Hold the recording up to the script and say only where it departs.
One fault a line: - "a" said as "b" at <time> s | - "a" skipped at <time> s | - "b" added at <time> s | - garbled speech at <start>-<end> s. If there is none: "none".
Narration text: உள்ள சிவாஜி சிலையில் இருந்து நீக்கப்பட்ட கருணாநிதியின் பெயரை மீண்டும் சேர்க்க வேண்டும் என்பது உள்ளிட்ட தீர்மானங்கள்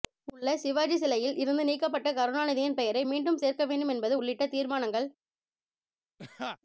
none